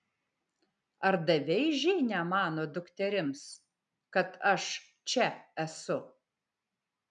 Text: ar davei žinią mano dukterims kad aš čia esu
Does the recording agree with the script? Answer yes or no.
yes